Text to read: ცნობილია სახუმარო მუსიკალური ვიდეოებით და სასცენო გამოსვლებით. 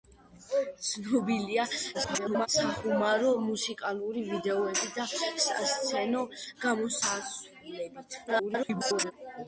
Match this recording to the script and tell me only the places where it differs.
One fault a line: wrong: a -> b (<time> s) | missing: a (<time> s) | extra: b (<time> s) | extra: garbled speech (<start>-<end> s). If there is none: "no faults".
extra: garbled speech (1.9-2.5 s)
extra: garbled speech (8.3-9.1 s)